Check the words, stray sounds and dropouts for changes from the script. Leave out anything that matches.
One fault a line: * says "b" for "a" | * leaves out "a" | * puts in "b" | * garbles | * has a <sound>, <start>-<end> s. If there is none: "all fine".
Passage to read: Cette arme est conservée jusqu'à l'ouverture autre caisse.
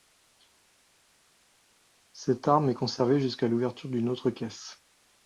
* puts in "d'une"